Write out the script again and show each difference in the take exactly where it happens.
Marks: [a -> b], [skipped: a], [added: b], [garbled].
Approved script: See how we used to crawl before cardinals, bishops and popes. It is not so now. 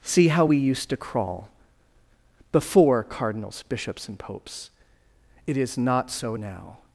See how we used to crawl before cardinals, bishops and popes. It is not so now.